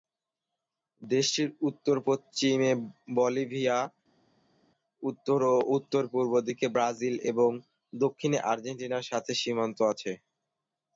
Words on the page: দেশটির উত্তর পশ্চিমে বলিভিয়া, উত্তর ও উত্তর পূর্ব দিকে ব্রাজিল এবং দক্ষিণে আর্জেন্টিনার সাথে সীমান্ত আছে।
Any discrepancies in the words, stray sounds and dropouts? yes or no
no